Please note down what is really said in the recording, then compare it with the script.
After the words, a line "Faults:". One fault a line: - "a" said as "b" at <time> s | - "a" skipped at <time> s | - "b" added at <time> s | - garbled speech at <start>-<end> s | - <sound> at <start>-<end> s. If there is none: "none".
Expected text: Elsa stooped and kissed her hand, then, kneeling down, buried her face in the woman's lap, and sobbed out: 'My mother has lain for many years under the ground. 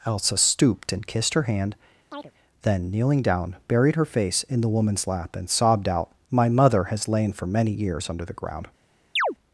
Elsa stooped and kissed her hand, then, kneeling down, buried her face in the woman's lap, and sobbed out: 'My mother has lain for many years under the ground.
Faults:
- chirp at 2.1-2.3 s
- chirp at 9.2-9.4 s